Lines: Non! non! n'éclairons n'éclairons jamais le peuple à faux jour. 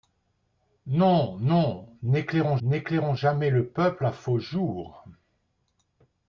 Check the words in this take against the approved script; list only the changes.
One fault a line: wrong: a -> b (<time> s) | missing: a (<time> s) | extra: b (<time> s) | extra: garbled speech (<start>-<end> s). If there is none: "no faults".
no faults